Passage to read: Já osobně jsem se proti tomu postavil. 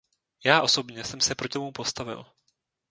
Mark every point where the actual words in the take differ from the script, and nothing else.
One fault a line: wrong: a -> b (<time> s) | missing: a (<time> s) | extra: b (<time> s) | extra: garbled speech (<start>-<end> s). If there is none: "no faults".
no faults